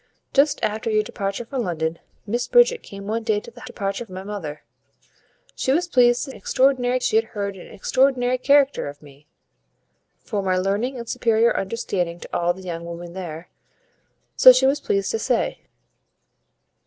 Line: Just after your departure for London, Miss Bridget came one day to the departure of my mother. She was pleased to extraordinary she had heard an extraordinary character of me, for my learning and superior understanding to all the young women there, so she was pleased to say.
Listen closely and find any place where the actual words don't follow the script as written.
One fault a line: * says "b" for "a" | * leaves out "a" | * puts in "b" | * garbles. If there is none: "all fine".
all fine